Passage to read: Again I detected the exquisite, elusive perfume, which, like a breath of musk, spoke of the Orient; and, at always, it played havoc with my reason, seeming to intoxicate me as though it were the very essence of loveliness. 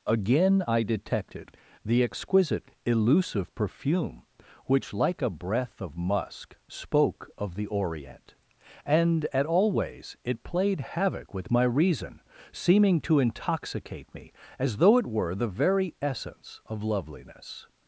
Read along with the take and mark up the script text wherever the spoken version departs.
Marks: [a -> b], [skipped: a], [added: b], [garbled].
Again I detected the exquisite, elusive perfume, which, like a breath of musk, spoke of the Orient; and, at always, it played havoc with my reason, seeming to intoxicate me as though it were the very essence of loveliness.